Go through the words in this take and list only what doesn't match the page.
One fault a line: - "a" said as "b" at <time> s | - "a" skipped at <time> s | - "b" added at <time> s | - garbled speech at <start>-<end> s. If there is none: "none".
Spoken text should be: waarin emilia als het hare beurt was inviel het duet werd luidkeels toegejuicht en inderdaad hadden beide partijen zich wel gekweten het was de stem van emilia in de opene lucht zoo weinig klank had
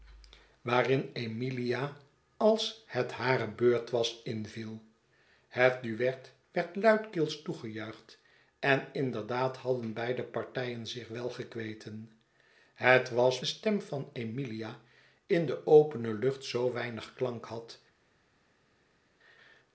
none